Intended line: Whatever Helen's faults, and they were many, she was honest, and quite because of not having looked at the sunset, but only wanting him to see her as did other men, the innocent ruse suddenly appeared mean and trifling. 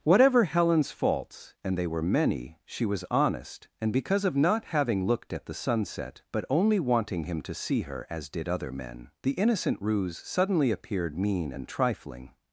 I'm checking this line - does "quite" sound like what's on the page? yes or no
no